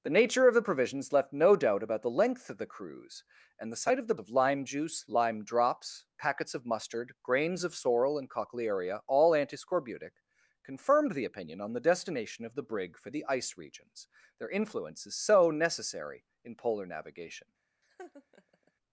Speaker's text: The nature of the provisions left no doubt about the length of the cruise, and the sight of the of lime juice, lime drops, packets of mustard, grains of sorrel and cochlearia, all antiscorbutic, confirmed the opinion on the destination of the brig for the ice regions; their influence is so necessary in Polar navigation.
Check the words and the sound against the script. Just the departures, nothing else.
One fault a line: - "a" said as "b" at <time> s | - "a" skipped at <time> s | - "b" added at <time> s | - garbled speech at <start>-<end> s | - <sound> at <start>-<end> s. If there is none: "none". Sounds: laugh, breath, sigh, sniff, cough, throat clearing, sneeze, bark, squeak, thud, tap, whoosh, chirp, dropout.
- laugh at 17.8-18.7 s